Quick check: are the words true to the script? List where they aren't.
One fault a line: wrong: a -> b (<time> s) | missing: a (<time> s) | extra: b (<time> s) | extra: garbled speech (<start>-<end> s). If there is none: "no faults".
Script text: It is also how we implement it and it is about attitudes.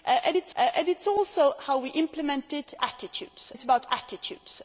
extra: it is (0.6 s)
wrong: and -> attitudes (2.8 s)